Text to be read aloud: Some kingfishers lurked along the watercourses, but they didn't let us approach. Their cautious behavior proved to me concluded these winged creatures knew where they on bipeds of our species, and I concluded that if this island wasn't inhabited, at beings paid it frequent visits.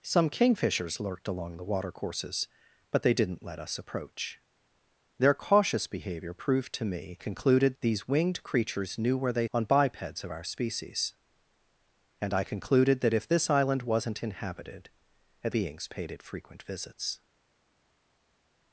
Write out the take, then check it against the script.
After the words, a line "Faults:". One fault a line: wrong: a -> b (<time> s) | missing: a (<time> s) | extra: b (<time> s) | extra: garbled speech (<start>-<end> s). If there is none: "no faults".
Some kingfishers lurked along the watercourses, but they didn't let us approach. Their cautious behavior proved to me concluded these winged creatures knew where they on bipeds of our species, and I concluded that if this island wasn't inhabited, at beings paid it frequent visits.
Faults:
no faults